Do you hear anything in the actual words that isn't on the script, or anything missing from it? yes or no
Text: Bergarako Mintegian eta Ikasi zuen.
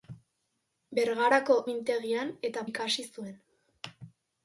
no